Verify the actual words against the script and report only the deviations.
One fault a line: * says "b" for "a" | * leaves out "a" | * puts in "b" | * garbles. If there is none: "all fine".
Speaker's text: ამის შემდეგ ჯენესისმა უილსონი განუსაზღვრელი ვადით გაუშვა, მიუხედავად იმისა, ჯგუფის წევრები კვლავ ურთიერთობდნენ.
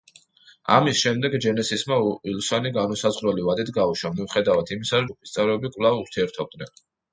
all fine